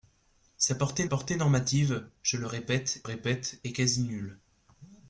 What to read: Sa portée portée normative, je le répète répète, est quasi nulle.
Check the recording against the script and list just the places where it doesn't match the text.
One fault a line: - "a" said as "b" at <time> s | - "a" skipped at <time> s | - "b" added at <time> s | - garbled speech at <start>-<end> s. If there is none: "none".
none